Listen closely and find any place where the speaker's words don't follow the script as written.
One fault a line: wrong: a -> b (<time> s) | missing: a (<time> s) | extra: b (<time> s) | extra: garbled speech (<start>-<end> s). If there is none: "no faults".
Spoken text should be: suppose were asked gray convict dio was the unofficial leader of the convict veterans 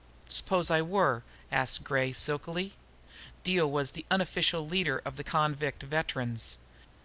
extra: i (0.7 s)
wrong: convict -> silkily (2.1 s)